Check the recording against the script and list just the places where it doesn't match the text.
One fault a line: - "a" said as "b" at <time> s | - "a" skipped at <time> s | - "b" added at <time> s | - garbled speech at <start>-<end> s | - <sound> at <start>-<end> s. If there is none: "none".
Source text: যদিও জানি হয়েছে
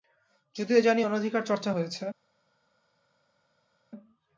- "অনধিকার চর্চা" added at 1.0 s